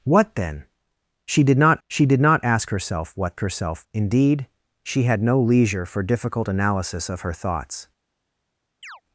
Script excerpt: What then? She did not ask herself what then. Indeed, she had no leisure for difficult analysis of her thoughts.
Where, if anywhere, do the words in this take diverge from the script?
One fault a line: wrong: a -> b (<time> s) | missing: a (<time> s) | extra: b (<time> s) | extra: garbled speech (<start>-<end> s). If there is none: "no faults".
extra: she did not (1.9 s)
wrong: then -> herself (3.4 s)